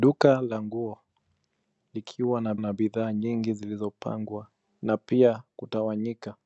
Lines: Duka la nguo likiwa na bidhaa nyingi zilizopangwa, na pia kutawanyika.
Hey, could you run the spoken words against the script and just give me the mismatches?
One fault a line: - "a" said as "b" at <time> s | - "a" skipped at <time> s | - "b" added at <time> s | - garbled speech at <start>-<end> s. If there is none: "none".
- "na" added at 2.6 s